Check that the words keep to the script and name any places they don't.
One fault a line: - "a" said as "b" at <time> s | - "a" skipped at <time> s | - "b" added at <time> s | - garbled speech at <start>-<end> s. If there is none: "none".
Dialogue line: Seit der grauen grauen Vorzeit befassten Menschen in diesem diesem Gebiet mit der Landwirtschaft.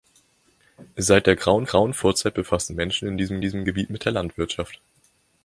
none